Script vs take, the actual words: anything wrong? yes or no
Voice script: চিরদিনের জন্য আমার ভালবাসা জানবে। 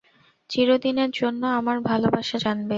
no